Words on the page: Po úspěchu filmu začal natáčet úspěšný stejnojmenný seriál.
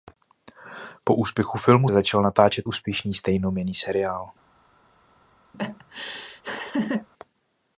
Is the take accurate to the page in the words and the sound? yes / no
no